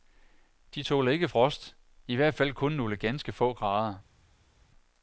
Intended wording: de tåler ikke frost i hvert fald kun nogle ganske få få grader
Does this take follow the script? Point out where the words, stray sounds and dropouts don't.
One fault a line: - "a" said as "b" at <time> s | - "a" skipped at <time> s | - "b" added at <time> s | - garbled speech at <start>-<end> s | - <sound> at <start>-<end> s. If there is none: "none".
- "få" skipped at 3.5 s